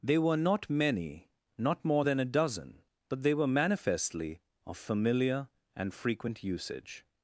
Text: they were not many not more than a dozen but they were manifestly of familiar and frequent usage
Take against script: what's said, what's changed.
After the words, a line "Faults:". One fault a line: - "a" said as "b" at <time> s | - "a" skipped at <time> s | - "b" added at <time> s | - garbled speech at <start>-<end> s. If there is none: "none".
they were not many not more than a dozen but they were manifestly of familiar and frequent usage
Faults:
none